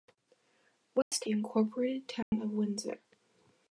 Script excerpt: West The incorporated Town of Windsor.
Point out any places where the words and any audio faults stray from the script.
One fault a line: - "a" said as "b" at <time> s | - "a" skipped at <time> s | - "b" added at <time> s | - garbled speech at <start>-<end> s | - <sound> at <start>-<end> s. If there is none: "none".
- dropout at 1.0-1.1 s
- dropout at 2.2-2.3 s